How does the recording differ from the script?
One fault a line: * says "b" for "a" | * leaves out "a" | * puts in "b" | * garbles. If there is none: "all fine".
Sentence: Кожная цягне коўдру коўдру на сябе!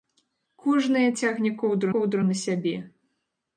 all fine